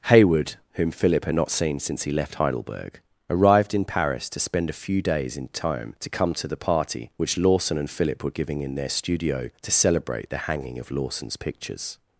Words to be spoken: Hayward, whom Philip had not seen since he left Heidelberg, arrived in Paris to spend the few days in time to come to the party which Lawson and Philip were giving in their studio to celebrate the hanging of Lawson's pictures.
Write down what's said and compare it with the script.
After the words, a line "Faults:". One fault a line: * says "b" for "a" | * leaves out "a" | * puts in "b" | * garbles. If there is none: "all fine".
Hayward, whom Philip had not seen since he left Heidelberg, arrived in Paris to spend a few days in time to come to the party which Lawson and Philip were giving in their studio to celebrate the hanging of Lawson's pictures.
Faults:
* says "a" for "the"